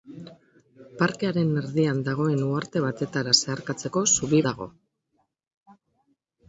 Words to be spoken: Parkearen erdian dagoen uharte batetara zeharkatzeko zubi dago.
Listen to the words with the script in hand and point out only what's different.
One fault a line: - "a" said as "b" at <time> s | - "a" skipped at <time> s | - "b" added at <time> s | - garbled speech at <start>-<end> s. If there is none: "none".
none